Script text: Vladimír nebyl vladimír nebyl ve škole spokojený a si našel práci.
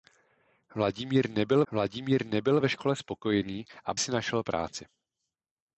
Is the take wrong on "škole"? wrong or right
right